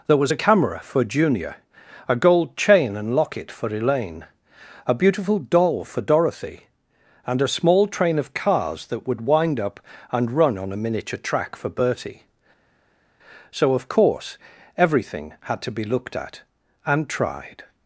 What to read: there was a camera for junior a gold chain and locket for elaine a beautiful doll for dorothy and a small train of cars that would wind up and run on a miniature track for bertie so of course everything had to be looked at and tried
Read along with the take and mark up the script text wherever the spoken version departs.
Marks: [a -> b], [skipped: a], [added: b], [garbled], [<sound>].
there was a camera for junior a gold chain and locket for elaine a beautiful doll for dorothy and a small train of cars that would wind up and run on a miniature track for bertie so of course everything had to be looked at and tried